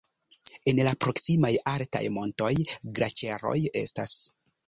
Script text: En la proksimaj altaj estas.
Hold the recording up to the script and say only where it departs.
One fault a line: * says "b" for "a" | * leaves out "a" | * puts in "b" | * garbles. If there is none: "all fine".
* puts in "montoj glaĉeroj"